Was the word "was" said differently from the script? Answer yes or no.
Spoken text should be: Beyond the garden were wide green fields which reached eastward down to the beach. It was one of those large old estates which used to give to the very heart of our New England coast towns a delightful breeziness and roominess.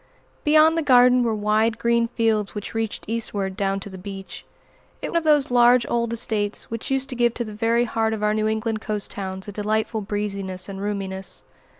yes